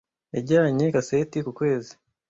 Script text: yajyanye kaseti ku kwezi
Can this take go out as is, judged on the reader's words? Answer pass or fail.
pass